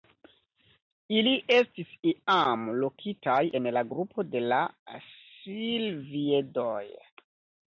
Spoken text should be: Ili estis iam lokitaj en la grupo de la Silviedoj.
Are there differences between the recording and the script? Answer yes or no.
no